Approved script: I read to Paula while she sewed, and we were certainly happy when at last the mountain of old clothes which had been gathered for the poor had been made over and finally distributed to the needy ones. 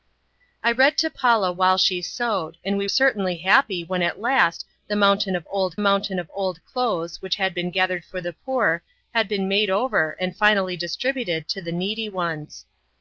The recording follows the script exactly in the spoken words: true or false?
false